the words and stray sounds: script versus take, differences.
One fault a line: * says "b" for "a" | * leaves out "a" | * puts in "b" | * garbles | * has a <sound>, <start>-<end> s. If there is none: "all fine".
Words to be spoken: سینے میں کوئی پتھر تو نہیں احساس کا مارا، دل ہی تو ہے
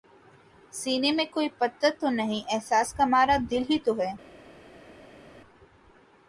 all fine